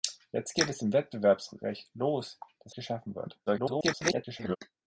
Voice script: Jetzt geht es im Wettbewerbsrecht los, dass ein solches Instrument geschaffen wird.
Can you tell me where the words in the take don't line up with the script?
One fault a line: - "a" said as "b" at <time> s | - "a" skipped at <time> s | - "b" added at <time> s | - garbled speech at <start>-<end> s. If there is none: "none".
- "ein solches Instrument" skipped at 2.8 s
- garbled speech at 3.5-4.6 s